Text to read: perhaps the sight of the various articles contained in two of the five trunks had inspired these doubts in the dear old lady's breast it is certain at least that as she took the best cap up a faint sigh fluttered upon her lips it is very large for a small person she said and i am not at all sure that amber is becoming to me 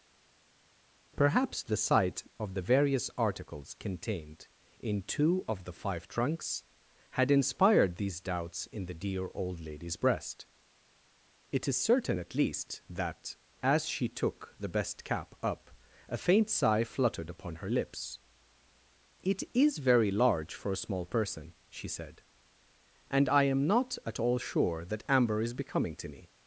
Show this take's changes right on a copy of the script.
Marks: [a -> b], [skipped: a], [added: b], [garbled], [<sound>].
perhaps the sight of the various articles contained in two of the five trunks had inspired these doubts in the dear old lady's breast it is certain at least that as she took the best cap up a faint sigh fluttered upon her lips it is very large for a small person she said and i am not at all sure that amber is becoming to me